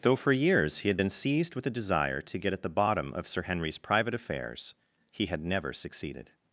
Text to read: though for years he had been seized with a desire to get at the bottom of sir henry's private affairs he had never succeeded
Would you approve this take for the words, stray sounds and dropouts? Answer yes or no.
yes